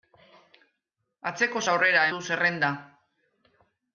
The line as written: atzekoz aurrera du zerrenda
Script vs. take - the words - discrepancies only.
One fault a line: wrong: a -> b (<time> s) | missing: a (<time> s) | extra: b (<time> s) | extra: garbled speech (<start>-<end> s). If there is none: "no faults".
no faults